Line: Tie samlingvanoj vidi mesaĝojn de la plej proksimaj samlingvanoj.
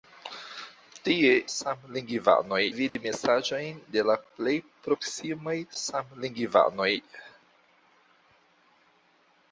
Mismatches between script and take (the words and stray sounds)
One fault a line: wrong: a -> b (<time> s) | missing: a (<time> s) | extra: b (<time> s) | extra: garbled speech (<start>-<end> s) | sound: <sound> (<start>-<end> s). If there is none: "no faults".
sound: dropout (2.9-3.0 s)